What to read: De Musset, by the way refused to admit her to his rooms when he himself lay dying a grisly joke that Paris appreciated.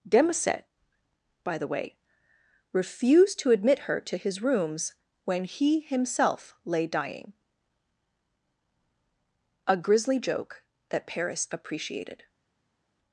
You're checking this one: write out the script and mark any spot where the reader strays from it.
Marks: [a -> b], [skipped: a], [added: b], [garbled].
De Musset, by the way refused to admit her to his rooms when he himself lay dying a grisly joke that Paris appreciated.